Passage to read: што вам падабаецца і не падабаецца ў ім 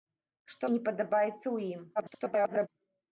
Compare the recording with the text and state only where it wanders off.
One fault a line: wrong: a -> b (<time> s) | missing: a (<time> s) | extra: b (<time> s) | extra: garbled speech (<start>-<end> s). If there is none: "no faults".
missing: вам падабаецца (0.7 s)
extra: garbled speech (2.0-2.7 s)